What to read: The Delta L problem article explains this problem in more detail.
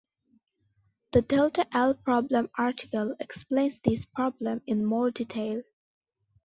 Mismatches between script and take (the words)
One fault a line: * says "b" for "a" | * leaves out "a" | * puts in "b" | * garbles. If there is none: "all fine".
all fine